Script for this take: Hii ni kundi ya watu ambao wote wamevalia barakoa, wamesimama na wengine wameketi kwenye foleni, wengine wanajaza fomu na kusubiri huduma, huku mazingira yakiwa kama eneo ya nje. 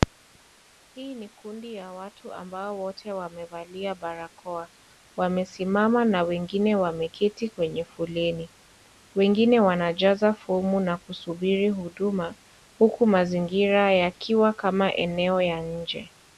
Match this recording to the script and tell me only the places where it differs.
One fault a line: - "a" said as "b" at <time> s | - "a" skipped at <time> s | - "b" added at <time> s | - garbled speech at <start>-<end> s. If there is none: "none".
none